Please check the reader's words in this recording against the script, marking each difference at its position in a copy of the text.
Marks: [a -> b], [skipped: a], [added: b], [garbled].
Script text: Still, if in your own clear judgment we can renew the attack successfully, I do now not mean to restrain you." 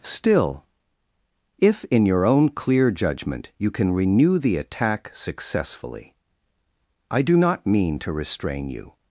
Still, if in your own clear judgment [we -> you] can renew the attack successfully, I do [skipped: now] not mean to restrain you."